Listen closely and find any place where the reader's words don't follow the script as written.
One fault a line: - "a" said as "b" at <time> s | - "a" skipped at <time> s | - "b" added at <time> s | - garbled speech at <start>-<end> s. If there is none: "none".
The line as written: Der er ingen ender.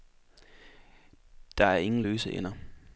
- "løse" added at 2.0 s